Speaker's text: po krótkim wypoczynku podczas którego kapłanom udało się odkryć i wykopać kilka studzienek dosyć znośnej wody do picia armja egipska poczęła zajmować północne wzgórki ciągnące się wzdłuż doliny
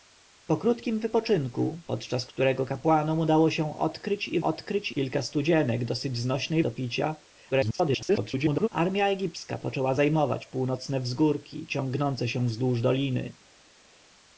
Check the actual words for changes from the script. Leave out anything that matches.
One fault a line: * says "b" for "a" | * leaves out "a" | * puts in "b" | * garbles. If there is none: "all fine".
* says "odkryć" for "wykopać"
* leaves out "wody"
* garbles